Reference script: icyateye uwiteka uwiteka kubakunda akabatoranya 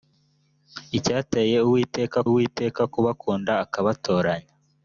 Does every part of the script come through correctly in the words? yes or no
yes